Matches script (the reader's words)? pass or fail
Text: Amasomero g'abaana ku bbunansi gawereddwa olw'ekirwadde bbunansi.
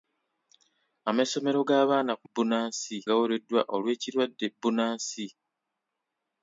pass